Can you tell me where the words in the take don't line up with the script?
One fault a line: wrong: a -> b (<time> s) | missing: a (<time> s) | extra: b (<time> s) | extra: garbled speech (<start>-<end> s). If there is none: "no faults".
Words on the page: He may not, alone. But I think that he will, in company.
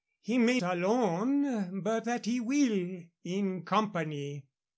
missing: not (0.6 s)
missing: I think (2.1 s)